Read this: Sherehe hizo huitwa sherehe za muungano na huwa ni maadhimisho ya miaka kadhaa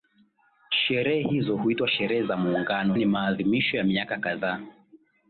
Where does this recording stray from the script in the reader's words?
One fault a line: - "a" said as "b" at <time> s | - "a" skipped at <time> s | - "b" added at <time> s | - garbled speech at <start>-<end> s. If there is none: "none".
- "na huwa" skipped at 3.0 s